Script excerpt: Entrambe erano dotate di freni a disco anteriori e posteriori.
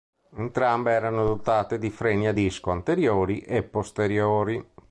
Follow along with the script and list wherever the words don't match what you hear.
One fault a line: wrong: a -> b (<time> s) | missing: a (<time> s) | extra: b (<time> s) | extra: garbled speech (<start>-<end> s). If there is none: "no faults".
no faults